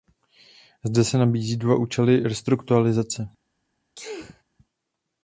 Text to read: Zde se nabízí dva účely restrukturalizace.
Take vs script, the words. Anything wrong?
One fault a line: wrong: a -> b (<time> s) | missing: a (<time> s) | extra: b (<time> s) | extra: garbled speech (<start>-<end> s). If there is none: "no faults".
no faults